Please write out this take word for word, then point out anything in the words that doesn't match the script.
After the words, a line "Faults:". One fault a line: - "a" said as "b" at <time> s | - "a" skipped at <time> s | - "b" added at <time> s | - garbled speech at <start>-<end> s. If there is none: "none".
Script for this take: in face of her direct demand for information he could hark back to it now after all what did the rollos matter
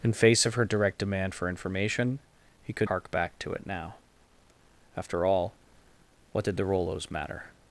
in face of her direct demand for information he could hark back to it now after all what did the rollos matter
Faults:
none